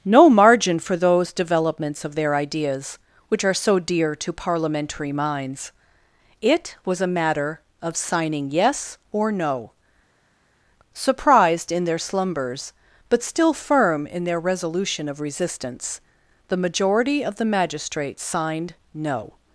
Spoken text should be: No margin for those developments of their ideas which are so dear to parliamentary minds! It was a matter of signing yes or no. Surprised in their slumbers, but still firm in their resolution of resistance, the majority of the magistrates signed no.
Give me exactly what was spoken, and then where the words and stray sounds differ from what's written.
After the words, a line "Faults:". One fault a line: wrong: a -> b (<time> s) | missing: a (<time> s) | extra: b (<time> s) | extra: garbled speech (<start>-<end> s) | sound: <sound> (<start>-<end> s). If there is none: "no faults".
No margin for those developments of their ideas which are so dear to parliamentary minds! It was a matter of signing yes or no. Surprised in their slumbers, but still firm in their resolution of resistance, the majority of the magistrates signed no.
Faults:
no faults